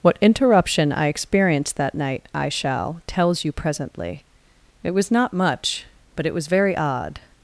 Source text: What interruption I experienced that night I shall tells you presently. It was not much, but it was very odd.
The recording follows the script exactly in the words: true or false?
true